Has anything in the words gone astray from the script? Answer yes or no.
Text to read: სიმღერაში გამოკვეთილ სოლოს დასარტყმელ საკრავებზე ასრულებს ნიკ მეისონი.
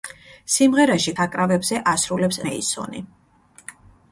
yes